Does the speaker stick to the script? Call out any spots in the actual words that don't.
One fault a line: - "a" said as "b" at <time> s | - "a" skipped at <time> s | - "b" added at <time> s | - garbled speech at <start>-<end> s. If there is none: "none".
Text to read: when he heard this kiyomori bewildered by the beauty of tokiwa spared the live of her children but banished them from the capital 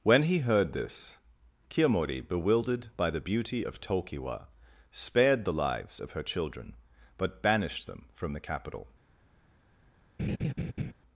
- "live" said as "lives" at 5.5 s